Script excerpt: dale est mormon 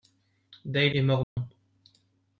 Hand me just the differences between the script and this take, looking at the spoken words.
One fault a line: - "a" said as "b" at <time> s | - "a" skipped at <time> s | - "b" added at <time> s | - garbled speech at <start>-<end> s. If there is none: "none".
none